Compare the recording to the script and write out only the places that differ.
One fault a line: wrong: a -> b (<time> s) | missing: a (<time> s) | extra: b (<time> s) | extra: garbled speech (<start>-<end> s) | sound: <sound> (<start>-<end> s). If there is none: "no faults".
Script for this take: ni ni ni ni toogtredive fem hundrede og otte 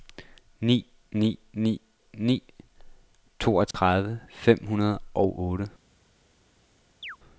sound: dropout (3.7-3.7 s)
sound: chirp (7.0-7.2 s)